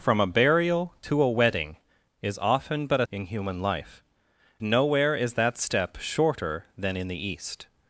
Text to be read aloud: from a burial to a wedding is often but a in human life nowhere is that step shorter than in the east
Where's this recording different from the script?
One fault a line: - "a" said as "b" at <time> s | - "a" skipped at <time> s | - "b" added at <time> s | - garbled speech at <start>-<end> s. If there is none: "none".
none